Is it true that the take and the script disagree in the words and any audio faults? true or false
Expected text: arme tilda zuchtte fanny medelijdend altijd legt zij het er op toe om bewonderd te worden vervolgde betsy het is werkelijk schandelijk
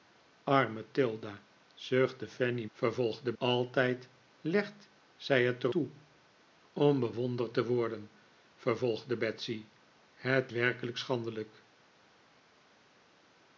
true